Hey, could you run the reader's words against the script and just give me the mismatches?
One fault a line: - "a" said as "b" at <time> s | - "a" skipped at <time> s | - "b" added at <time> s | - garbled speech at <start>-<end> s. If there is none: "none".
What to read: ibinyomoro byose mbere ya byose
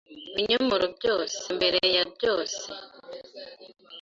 none